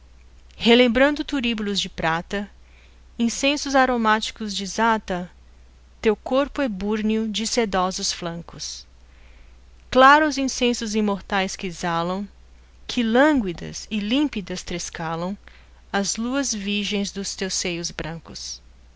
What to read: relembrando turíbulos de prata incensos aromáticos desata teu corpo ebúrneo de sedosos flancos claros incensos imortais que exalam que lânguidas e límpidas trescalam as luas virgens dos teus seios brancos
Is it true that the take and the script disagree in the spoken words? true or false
false